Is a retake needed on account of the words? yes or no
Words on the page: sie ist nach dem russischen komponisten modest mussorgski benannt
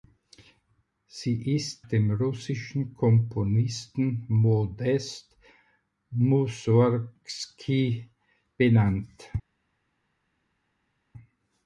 yes